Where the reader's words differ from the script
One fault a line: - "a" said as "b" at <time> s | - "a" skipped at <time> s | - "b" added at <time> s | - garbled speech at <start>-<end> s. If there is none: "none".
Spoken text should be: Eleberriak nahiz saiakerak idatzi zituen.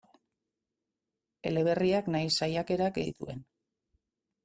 - "idatzi" skipped at 3.0 s